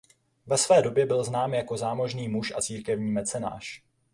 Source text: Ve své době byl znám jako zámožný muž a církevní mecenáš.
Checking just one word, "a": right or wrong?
right